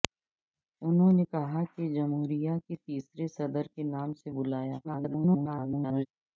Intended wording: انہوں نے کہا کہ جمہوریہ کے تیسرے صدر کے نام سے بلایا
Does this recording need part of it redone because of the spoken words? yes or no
yes